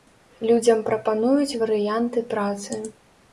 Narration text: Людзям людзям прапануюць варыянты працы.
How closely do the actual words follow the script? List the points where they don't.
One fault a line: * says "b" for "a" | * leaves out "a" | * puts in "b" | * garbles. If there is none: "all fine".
* leaves out "людзям"